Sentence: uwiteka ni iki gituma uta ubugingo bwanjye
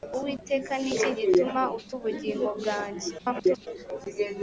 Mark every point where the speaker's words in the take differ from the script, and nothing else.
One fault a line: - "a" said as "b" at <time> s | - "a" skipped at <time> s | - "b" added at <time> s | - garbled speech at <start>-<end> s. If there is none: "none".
- garbled speech at 3.2-3.7 s